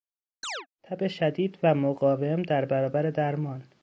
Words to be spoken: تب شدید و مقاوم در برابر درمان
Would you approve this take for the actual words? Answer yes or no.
yes